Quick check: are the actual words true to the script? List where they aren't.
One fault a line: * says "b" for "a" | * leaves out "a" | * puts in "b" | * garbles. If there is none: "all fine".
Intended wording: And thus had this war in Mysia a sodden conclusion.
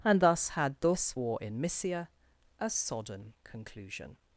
all fine